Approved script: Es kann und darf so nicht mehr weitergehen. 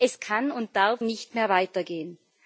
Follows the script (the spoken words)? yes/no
no